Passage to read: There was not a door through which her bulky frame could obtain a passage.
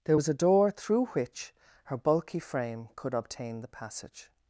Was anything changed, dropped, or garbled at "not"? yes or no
yes